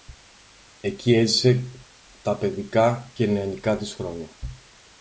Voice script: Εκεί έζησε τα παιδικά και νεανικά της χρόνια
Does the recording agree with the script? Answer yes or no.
yes